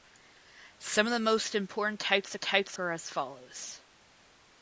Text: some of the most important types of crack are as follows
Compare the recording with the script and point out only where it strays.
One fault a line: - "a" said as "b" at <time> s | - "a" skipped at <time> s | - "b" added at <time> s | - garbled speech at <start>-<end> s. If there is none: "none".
- "crack" said as "types" at 2.4 s